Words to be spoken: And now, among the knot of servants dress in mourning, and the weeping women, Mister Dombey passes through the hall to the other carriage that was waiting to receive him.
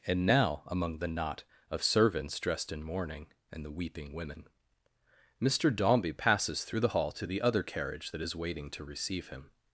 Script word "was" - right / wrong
wrong